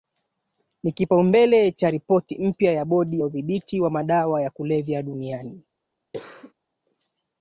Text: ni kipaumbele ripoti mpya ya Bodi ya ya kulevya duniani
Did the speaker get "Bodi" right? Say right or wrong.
right